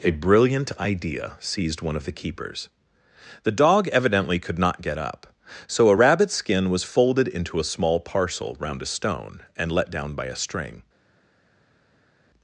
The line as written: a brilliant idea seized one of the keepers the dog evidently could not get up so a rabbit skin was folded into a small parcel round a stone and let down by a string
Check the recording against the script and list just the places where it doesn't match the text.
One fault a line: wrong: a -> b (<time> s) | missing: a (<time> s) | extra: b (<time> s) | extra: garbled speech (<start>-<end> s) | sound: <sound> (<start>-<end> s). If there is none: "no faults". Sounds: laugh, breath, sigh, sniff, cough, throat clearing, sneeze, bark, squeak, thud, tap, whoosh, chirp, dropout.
no faults